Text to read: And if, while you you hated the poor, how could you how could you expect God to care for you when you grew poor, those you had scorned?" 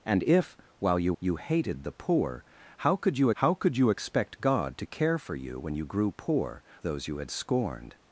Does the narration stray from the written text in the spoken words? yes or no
no